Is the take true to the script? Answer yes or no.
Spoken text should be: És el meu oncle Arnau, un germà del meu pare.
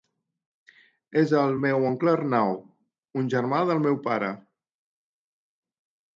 yes